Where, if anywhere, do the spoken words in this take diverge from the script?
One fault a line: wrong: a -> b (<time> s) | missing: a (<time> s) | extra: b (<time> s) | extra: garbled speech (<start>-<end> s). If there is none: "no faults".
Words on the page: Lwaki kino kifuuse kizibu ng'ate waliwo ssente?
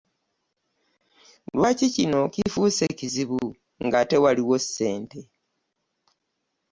no faults